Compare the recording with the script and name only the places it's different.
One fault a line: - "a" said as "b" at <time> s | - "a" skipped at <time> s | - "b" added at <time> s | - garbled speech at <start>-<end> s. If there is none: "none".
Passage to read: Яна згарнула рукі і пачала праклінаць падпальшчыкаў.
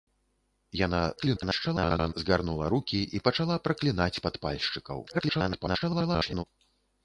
- garbled speech at 1.2-2.1 s
- garbled speech at 5.1-6.4 s